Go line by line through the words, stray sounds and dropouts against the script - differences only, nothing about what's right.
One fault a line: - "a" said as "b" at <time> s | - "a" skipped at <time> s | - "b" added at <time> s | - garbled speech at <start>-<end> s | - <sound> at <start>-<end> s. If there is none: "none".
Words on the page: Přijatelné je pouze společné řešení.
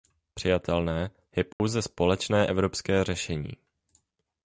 - dropout at 1.5-1.6 s
- "evropské" added at 2.5 s